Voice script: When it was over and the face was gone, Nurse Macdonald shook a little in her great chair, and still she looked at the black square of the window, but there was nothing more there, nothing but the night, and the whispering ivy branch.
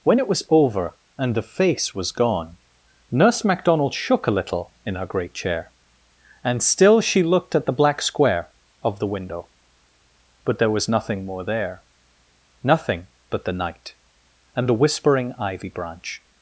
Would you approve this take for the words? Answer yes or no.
yes